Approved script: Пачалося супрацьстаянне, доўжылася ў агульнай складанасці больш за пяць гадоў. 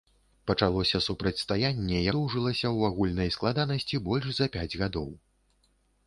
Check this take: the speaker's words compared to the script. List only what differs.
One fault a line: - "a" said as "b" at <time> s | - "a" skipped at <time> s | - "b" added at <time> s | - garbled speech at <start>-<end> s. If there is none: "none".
none